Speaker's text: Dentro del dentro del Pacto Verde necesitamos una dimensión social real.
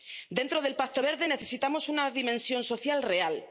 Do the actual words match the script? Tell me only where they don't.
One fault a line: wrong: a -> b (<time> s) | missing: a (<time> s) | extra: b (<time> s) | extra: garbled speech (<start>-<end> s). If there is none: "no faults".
missing: dentro del (0.8 s)